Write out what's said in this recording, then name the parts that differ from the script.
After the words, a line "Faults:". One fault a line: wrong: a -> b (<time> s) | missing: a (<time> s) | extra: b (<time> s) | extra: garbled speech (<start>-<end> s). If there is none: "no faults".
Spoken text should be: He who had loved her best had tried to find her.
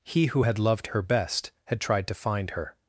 He who had loved her best had tried to find her.
Faults:
no faults